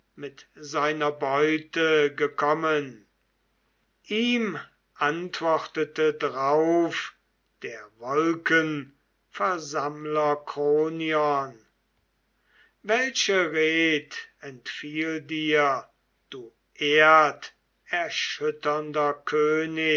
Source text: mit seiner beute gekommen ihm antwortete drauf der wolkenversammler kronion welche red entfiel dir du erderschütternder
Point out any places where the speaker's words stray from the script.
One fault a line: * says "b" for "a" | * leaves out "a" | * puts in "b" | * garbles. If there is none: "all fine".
all fine